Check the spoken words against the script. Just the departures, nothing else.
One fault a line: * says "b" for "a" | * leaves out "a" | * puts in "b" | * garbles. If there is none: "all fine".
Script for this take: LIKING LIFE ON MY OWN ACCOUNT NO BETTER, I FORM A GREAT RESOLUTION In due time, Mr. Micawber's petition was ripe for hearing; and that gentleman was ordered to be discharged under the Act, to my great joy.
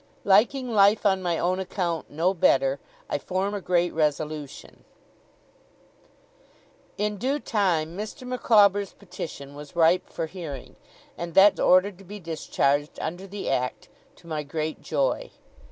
* leaves out "gentleman was"